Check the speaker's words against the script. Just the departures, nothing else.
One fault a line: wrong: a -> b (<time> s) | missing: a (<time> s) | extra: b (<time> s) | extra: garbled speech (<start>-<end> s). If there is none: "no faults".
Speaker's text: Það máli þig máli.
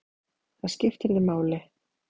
wrong: máli -> skipti (0.8 s)